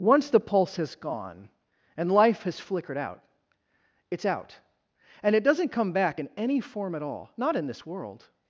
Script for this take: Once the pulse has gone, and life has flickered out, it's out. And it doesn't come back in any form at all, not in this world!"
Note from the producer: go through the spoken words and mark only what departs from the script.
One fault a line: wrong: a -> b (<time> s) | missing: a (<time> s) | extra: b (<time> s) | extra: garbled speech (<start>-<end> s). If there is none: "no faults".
no faults